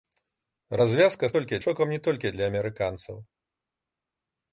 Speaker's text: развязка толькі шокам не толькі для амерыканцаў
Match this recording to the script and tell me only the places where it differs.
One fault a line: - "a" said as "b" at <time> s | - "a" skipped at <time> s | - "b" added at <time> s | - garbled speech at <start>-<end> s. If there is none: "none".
none